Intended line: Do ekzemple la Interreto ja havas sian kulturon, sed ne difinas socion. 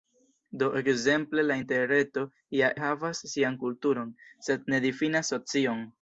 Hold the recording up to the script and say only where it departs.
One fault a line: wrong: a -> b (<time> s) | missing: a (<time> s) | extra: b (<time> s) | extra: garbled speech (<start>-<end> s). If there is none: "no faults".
no faults